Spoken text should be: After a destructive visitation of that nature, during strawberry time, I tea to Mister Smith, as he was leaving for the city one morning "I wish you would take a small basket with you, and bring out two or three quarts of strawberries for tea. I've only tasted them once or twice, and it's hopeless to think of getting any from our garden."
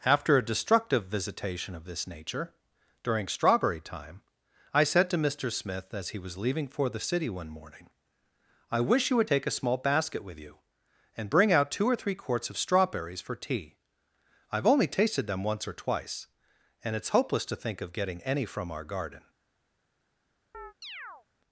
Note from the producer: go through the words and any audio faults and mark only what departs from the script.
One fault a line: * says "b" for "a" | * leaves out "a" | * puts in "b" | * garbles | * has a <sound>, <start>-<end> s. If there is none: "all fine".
* says "this" for "that"
* says "said" for "tea"
* has a chirp, 20.5-21.3 s